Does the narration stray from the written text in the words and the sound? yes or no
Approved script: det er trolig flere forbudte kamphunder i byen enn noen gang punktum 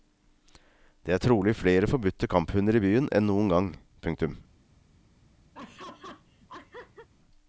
yes